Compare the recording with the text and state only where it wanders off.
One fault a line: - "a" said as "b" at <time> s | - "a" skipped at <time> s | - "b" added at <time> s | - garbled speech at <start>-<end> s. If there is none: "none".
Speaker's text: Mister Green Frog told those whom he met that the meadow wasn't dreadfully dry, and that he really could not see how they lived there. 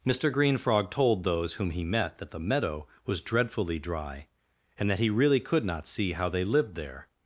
- "wasn't" said as "was" at 3.0 s